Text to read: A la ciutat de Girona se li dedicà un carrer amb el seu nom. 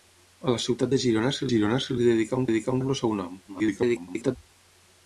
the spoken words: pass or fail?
fail